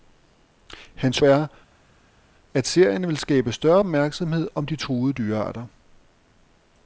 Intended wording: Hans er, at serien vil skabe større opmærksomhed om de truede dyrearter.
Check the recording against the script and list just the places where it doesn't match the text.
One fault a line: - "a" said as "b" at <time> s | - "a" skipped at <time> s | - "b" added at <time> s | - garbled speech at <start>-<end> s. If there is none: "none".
none